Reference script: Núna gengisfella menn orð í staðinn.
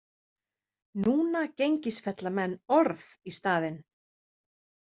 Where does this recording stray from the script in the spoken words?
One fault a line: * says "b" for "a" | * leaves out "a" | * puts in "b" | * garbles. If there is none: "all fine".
all fine